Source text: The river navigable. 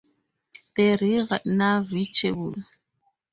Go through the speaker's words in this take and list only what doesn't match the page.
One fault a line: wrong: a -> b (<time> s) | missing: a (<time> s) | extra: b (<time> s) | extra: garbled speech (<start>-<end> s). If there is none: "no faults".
no faults